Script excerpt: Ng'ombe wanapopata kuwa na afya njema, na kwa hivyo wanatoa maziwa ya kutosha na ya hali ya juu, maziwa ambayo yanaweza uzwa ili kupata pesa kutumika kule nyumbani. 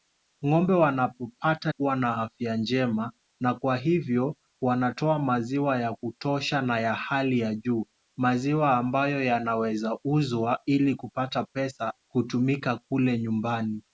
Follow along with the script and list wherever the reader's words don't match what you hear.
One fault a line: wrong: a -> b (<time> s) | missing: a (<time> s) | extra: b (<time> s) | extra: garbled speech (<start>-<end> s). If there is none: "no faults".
no faults